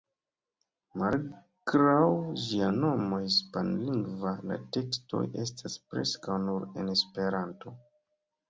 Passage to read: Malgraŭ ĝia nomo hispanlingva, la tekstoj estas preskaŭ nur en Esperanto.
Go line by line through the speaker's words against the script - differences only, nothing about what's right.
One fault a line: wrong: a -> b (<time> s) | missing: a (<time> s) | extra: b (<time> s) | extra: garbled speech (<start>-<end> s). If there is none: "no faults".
no faults